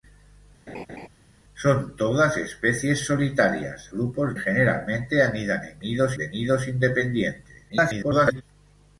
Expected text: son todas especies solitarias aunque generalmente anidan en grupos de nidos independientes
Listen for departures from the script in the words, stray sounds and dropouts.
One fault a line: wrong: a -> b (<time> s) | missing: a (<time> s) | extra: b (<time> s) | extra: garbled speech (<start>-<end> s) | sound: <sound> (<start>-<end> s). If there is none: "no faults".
sound: laugh (0.7-1.1 s)
wrong: aunque -> grupos (3.9 s)
wrong: grupos -> nidos (5.8 s)
extra: garbled speech (7.7-8.4 s)